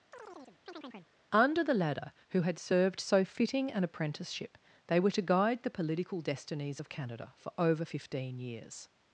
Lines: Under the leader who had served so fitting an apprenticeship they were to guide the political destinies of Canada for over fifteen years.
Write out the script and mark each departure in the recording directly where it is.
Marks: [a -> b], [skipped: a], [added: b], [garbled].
Under the [leader -> ladder] who had served so fitting an apprenticeship they were to guide the political destinies of Canada for over fifteen years.